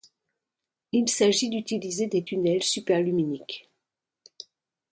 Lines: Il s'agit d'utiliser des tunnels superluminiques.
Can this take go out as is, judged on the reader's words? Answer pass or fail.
pass